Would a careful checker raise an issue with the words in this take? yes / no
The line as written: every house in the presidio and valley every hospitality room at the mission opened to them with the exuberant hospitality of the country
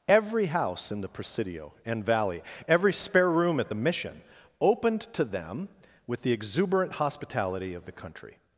yes